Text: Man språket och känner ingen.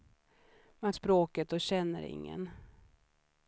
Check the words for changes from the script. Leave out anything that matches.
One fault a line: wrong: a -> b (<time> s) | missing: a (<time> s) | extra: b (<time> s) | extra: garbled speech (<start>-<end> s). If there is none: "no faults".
no faults